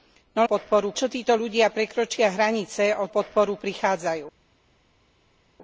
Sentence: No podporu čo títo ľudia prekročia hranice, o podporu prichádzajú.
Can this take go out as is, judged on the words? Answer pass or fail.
pass